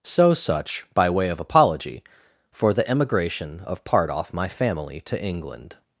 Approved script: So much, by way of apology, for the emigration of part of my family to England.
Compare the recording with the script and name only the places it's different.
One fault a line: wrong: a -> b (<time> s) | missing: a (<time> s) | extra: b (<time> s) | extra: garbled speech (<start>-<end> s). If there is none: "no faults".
wrong: much -> such (0.3 s)
wrong: of -> off (4.1 s)